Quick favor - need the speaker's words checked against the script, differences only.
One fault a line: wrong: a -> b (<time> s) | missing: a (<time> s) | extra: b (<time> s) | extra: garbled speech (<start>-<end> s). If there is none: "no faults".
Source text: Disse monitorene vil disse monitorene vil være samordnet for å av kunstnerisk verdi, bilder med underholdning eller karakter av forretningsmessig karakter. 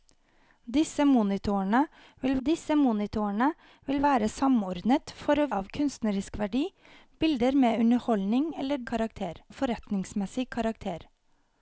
no faults